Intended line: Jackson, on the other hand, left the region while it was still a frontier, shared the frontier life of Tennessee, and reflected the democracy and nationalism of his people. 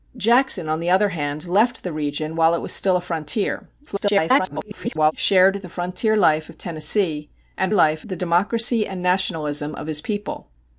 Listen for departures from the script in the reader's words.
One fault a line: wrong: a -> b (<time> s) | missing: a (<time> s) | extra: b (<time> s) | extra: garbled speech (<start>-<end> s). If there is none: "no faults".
extra: garbled speech (3.9-5.1 s)
wrong: reflected -> life (7.7 s)